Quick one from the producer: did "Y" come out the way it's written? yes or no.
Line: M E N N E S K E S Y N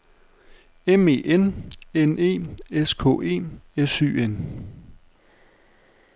yes